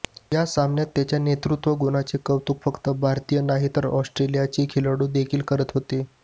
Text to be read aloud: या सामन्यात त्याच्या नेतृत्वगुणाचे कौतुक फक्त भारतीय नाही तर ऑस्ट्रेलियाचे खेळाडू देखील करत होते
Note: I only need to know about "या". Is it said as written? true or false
true